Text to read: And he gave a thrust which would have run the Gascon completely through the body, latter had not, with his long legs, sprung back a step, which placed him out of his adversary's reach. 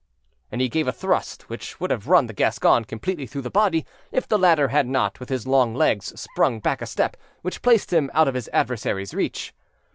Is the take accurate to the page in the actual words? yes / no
no